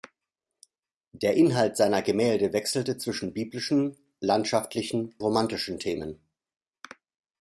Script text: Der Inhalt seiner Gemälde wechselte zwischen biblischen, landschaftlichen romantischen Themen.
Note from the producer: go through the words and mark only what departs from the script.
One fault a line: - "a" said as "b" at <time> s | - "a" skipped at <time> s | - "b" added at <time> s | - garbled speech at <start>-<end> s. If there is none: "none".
none